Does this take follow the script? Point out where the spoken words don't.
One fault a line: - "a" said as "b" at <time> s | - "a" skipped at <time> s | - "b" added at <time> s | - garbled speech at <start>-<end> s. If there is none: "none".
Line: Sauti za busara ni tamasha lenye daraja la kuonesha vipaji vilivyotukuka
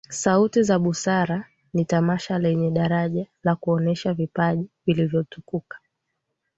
none